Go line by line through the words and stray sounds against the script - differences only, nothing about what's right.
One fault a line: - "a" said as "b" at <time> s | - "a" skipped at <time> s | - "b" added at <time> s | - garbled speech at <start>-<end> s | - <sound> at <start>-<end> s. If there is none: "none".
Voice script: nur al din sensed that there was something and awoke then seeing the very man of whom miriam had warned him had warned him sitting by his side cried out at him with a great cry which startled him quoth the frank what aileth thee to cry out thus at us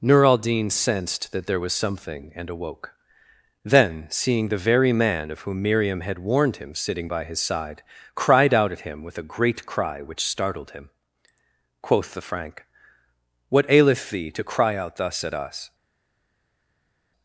- "had warned him" skipped at 6.7 s